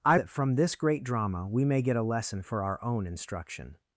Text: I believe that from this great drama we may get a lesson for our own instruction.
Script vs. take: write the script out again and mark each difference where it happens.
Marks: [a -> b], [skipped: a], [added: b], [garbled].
I [skipped: believe] that from this great drama we may get a lesson for our own instruction.